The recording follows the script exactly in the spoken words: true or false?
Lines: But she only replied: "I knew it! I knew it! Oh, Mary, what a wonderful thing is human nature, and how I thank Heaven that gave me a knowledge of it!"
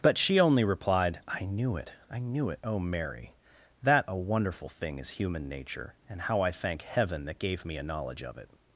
false